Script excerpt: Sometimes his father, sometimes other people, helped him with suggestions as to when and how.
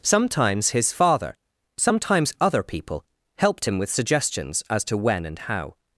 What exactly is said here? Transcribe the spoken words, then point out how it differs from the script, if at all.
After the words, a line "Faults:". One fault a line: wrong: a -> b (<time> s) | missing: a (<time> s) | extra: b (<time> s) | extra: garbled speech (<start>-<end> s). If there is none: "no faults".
Sometimes his father, sometimes other people, helped him with suggestions as to when and how.
Faults:
no faults